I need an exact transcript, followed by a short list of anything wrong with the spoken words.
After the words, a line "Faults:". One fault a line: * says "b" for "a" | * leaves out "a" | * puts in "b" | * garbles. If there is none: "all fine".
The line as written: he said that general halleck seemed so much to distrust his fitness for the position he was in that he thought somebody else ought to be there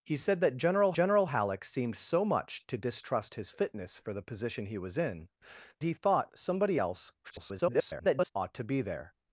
he said that general general halleck seemed so much to distrust his fitness for the position he was in he thought somebody else [garbled] ought to be there
Faults:
* puts in "general"
* leaves out "that"
* garbles